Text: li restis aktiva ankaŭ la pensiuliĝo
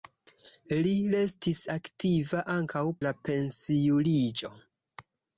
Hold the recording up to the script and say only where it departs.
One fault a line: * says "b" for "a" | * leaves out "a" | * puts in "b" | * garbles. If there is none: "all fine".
all fine